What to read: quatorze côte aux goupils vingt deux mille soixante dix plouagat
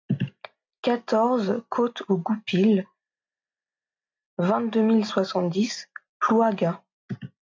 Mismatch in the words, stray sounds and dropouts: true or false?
false